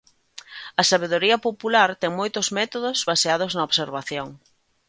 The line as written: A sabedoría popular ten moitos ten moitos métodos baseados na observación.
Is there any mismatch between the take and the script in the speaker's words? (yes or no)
yes